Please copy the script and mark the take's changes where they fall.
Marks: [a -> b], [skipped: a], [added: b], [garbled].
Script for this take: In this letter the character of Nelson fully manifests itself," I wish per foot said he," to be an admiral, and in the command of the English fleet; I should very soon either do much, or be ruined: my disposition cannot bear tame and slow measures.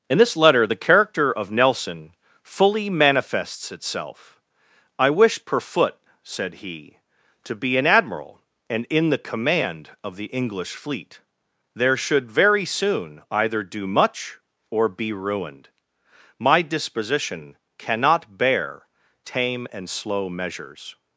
In this letter the character of Nelson fully manifests itself," I wish per foot said he," to be an admiral, and in the command of the English fleet; [I -> there] should very soon either do much, or be ruined: my disposition cannot bear tame and slow measures.